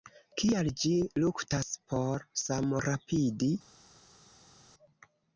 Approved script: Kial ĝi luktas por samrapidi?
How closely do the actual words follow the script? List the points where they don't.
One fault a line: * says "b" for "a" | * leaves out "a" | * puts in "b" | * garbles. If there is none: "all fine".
all fine